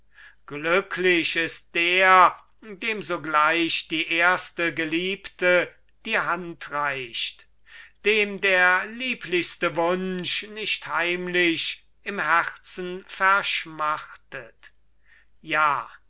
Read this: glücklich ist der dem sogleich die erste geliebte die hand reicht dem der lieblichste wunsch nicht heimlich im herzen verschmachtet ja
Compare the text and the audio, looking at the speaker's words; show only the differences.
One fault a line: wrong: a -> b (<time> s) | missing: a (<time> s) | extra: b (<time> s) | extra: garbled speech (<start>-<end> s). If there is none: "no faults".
no faults